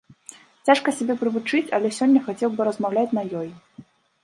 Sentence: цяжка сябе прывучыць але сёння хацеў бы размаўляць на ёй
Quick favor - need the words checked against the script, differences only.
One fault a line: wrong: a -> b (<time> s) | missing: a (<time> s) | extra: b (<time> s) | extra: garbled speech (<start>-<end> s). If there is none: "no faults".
no faults